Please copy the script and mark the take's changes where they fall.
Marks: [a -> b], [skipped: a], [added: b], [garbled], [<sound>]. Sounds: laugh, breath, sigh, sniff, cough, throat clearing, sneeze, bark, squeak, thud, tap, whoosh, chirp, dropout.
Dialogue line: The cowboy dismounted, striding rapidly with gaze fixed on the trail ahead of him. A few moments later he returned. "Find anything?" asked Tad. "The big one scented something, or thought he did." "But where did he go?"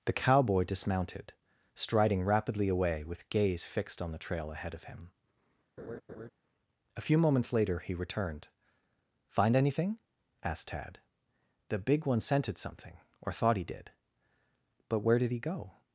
The cowboy dismounted, striding rapidly [added: away] with gaze fixed on the trail ahead of him. [laugh] A few moments later he returned. "Find anything?" asked Tad. "The big one scented something, or thought he did." "But where did he go?"